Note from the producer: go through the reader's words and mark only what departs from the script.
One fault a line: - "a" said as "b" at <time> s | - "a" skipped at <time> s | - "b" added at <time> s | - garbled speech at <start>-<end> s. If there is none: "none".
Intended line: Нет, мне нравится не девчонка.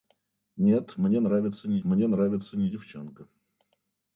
- "мне нравится не" added at 1.8 s